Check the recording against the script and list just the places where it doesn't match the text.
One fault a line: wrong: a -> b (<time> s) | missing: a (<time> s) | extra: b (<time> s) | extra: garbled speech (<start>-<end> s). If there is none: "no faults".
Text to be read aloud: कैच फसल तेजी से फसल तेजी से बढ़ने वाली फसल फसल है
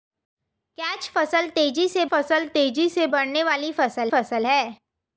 no faults